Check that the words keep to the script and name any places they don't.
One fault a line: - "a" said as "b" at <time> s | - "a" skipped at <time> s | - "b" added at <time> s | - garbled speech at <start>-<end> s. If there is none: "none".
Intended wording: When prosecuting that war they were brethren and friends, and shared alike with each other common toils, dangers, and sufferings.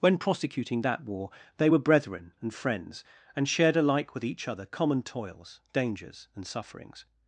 none